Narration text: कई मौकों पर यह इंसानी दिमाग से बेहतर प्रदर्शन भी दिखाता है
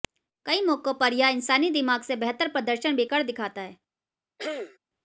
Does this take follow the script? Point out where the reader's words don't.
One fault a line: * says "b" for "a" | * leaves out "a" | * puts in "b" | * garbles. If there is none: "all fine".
* puts in "कर"